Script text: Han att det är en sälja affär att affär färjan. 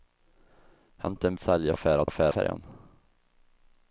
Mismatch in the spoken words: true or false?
false